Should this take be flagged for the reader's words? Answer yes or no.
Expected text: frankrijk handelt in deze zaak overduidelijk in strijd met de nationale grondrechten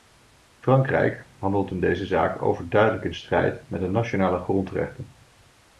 no